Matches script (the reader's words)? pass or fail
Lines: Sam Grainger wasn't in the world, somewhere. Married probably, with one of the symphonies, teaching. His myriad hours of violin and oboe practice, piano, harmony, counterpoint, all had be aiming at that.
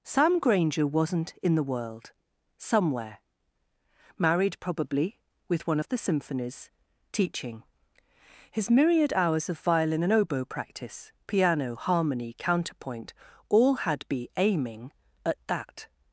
pass